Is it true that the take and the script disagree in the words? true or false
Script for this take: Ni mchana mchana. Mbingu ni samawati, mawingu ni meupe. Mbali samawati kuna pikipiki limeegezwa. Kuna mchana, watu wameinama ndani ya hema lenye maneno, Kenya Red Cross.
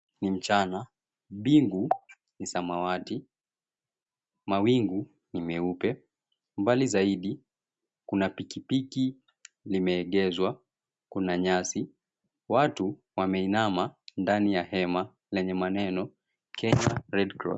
true